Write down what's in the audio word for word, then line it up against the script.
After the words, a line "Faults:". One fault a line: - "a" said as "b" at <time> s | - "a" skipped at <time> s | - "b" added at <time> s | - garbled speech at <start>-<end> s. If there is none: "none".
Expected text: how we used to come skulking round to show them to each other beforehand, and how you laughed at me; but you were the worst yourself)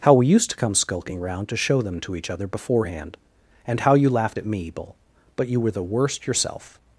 how we used to come skulking round to show them to each other beforehand, and how you laughed at me; bull but you were the worst yourself)
Faults:
- "bull" added at 4.7 s